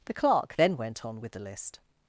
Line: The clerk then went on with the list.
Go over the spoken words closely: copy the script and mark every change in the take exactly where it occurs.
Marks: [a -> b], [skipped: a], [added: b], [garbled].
The clerk then went on with the list.